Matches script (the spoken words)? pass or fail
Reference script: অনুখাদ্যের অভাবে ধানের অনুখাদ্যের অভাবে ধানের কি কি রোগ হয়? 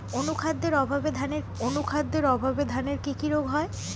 pass